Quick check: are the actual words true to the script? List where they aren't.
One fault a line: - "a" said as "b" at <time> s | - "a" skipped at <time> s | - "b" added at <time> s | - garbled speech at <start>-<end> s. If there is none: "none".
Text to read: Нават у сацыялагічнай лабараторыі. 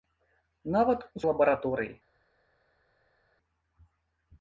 - "сацыялагічнай" skipped at 1.2 s